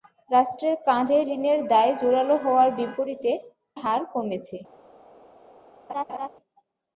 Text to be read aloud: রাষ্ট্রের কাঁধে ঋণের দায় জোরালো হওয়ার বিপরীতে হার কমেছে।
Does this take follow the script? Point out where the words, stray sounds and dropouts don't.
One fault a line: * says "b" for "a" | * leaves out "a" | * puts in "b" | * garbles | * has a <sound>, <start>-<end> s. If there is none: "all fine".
* has a laugh, 5.9-6.3 s